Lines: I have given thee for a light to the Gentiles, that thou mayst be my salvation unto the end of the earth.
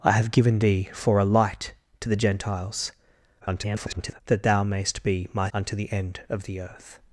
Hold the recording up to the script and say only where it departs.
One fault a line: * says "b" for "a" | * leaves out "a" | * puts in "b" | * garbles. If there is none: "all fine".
* garbles
* leaves out "salvation"